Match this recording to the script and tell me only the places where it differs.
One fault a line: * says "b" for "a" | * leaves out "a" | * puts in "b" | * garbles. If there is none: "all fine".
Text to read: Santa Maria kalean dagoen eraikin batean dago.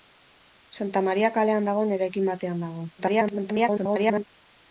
* garbles